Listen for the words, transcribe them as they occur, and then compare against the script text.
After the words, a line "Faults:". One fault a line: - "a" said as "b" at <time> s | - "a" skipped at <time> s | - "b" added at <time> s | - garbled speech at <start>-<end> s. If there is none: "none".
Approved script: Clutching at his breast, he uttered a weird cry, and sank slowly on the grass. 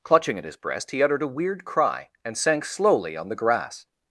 Clutching at his breast, he uttered a weird cry, and sank slowly on the grass.
Faults:
none